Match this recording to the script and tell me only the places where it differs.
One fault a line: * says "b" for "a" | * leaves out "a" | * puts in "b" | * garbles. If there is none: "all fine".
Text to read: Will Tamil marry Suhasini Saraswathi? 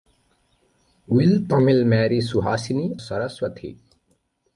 all fine